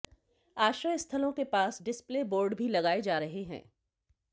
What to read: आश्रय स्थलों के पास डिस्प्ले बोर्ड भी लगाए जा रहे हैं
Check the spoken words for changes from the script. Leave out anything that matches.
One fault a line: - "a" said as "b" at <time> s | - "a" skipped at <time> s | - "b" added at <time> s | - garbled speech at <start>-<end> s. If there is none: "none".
none